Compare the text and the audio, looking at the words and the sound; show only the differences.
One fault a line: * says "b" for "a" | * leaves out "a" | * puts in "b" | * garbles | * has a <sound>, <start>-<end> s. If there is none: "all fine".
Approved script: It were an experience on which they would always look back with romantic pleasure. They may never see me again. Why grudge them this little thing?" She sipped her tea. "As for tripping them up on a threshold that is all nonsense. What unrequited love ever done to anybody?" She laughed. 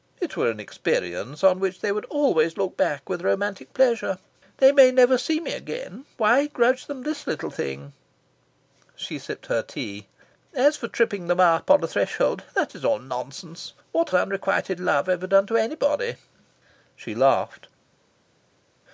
all fine